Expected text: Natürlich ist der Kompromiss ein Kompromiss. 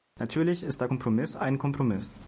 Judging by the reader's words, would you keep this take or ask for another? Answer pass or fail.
pass